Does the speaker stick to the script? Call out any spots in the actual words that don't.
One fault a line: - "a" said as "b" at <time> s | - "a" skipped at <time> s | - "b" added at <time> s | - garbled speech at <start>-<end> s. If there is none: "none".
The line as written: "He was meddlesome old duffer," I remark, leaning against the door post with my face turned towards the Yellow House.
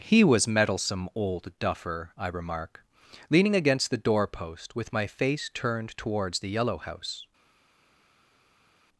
none